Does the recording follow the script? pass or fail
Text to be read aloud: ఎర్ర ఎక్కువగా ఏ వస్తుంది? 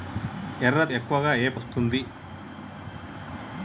pass